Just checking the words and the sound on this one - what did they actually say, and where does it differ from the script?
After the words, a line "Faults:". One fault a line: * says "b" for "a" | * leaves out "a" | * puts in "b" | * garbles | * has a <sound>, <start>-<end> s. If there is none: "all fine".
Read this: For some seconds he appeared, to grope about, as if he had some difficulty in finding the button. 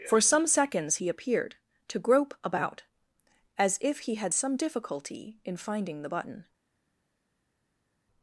For some seconds he appeared, to grope about, as if he had some difficulty in finding the button.
Faults:
all fine